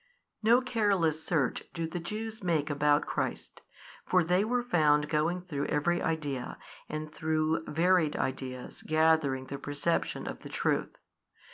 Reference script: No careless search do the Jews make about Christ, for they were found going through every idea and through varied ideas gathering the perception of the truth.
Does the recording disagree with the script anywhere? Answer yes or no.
no